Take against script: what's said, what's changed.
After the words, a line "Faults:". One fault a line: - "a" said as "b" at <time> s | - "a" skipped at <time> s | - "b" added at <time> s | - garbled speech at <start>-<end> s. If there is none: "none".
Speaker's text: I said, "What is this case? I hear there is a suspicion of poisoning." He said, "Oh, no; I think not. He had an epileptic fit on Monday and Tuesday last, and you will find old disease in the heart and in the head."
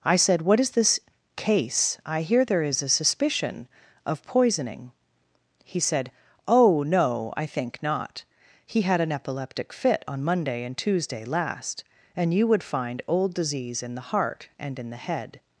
I said, "What is this case? I hear there is a suspicion of poisoning." He said, "Oh, no; I think not. He had an epileptic fit on Monday and Tuesday last, and you would find old disease in the heart and in the head."
Faults:
- "will" said as "would" at 12.5 s